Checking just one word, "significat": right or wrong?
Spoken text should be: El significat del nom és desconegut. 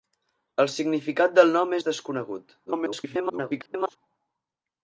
right